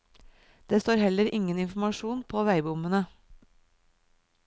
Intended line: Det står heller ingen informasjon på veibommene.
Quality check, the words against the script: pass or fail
pass